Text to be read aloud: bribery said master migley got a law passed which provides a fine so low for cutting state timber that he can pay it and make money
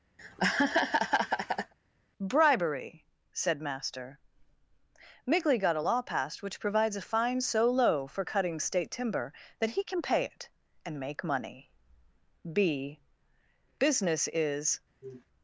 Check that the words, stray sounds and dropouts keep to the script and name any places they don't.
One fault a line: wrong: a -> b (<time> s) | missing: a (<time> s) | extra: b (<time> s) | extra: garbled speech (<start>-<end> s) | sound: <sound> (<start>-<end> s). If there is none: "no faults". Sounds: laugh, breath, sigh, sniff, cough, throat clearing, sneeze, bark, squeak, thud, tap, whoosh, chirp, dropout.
sound: laugh (0.2-1.7 s)
extra: b business is (12.5 s)
sound: sniff (15.0-15.3 s)